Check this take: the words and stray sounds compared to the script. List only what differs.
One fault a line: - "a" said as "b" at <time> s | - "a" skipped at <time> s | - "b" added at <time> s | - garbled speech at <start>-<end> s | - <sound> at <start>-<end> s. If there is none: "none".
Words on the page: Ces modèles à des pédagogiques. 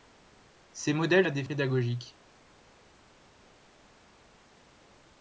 none